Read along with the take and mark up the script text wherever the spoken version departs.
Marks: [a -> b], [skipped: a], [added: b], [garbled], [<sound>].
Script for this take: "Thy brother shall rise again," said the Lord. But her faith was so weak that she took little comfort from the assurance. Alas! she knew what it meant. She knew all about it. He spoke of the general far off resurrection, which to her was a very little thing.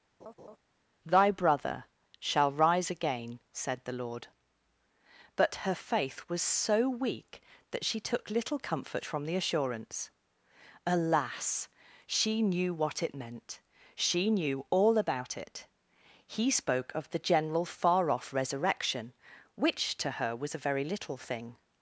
[laugh] "Thy brother shall rise again," said the Lord. But her faith was so weak that she took little comfort from the assurance. Alas! she knew what it meant. She knew all about it. He spoke of the general far off resurrection, which to her was a very little thing.